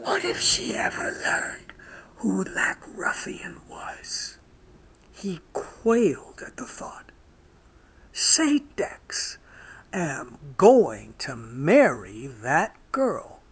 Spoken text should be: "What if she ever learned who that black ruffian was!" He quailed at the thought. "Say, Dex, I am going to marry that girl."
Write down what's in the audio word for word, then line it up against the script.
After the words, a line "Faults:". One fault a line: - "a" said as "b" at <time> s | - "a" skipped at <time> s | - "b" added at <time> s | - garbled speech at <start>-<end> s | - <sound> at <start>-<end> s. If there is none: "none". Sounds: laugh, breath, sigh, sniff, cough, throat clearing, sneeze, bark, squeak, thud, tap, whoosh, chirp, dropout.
"What if she ever learned who black ruffian was!" He quailed at the thought. "Say, Dex, am going to marry that girl."
Faults:
- "that" skipped at 2.4 s
- "I" skipped at 9.4 s